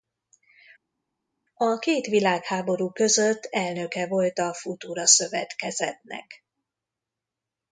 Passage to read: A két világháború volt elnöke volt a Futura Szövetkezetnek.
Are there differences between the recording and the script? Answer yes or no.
yes